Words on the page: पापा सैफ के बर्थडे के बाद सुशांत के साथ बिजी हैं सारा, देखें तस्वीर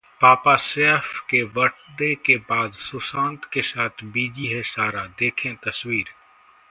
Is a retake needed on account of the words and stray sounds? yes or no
no